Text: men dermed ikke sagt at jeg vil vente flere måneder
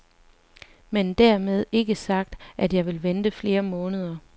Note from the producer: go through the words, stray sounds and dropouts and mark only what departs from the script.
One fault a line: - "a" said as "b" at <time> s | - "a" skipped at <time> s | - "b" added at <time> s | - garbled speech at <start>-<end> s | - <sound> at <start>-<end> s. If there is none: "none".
none